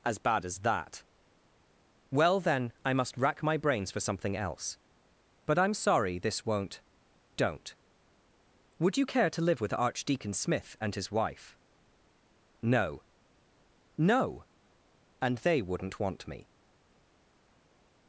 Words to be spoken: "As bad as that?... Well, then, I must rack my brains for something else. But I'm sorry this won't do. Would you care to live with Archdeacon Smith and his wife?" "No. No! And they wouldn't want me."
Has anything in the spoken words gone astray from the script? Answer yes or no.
yes